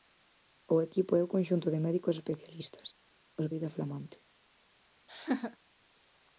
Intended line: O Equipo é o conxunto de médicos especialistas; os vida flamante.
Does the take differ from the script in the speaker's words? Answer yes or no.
no